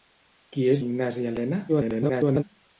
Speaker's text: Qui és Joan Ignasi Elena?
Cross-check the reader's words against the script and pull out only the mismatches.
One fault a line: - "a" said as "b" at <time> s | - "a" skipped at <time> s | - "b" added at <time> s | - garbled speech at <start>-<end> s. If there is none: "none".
- "Joan" skipped at 0.8 s
- garbled speech at 1.7-2.4 s